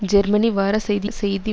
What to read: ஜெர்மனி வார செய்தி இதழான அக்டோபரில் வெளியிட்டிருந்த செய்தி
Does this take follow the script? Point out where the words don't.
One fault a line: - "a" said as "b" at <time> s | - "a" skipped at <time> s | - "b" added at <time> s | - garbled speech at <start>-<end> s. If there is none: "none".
- "இதழான அக்டோபரில் வெளியிட்டிருந்த" skipped at 1.1 s